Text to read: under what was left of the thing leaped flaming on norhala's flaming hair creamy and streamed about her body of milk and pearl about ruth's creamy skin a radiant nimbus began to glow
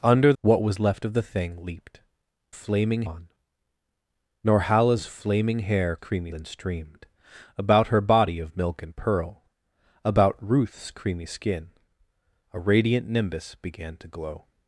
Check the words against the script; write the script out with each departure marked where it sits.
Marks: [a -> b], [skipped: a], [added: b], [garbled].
under what was left of the thing leaped flaming on norhala's flaming hair creamy and streamed about her body of milk and pearl about ruth's creamy skin a radiant nimbus began to glow